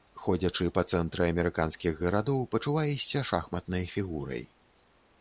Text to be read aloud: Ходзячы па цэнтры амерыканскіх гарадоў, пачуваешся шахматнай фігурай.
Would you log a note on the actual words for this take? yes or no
no